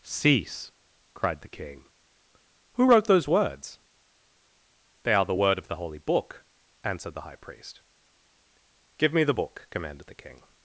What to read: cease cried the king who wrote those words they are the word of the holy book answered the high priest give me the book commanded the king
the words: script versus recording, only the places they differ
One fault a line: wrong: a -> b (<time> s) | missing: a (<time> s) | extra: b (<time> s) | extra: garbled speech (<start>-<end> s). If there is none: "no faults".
no faults